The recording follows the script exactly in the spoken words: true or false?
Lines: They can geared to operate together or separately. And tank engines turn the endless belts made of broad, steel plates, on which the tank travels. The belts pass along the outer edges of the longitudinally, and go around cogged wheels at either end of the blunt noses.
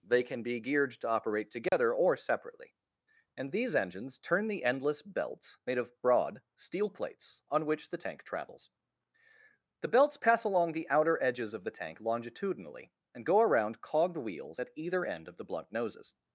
false